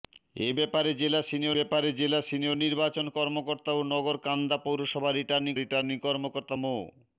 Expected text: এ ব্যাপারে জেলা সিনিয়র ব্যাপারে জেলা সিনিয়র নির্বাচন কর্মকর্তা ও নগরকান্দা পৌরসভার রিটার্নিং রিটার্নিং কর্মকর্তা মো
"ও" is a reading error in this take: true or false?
false